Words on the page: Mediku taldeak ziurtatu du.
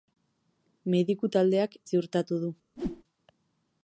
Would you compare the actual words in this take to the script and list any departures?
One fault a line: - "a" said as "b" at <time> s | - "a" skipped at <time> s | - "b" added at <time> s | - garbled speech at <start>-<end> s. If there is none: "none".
none